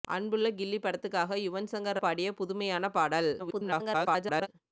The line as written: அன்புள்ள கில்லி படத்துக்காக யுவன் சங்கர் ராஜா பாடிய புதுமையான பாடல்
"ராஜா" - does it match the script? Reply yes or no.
no